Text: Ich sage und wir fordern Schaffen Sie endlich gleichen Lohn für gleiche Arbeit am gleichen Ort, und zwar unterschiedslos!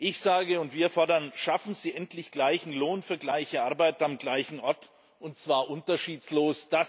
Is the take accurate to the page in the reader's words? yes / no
yes